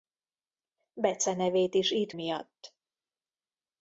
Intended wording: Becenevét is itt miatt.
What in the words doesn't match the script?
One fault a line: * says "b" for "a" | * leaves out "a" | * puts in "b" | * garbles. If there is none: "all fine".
all fine